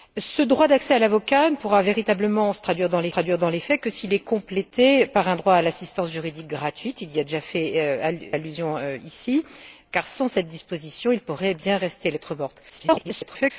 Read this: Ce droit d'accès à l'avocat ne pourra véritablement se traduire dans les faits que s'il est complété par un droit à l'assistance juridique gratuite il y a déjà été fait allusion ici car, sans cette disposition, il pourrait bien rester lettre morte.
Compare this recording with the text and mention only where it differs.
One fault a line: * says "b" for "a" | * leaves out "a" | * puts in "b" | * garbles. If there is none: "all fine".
* puts in "traduire dans les"
* leaves out "été fait"
* garbles